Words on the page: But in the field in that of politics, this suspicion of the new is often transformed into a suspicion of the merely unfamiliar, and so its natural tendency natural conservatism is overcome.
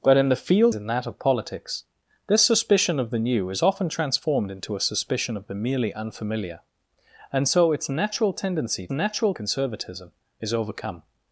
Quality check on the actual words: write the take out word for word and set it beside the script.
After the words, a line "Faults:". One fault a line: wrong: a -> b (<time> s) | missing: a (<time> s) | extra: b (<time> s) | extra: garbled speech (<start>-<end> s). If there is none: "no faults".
But in the field in that of politics, this suspicion of the new is often transformed into a suspicion of the merely unfamiliar, and so its natural tendency natural conservatism is overcome.
Faults:
no faults